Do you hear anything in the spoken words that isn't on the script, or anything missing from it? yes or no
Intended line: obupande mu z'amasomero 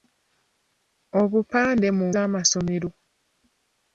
no